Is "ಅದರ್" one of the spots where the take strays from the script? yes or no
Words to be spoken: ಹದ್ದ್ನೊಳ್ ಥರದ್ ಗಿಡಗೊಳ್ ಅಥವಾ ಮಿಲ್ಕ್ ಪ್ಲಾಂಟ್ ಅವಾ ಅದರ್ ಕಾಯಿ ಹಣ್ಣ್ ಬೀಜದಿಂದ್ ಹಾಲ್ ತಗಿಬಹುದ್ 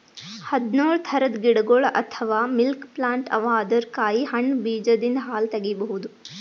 no